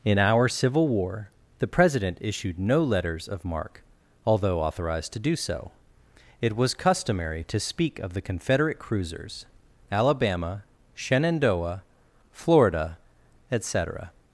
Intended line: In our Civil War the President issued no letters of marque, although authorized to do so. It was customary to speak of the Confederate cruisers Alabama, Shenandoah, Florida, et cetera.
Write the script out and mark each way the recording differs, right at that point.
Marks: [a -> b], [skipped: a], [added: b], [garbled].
In our Civil War the President issued no letters of marque, although authorized to do so. It was customary to speak of the Confederate cruisers Alabama, Shenandoah, Florida, et cetera.